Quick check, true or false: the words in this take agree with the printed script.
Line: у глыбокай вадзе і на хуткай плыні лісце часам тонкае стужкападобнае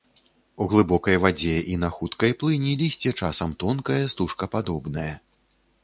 true